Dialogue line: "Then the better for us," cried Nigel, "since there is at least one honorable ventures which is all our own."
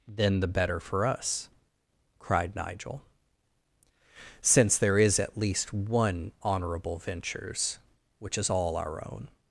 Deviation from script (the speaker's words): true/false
false